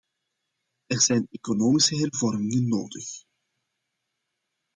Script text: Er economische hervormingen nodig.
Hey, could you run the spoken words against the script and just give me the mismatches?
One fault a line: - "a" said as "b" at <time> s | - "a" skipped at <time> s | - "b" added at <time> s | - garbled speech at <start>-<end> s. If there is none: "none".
- "zijn" added at 1.0 s